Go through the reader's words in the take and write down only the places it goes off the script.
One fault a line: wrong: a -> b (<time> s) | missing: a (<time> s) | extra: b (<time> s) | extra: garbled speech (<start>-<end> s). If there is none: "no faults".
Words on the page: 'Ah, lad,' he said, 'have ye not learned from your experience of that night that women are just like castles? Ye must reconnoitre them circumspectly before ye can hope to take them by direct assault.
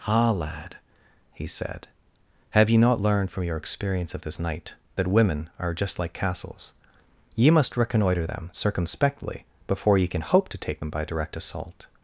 wrong: that -> this (4.2 s)